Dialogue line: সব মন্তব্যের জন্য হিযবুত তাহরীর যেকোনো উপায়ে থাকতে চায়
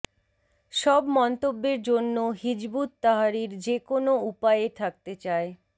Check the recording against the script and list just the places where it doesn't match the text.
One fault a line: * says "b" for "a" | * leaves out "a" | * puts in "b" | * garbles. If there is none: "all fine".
all fine